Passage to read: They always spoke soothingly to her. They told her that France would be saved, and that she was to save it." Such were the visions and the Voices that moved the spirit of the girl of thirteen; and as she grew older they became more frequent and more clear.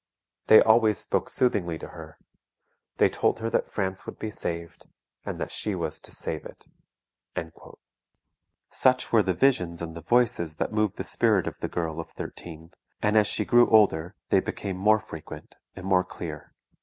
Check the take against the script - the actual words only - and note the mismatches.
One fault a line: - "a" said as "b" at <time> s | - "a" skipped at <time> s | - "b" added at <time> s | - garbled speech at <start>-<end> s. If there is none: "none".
none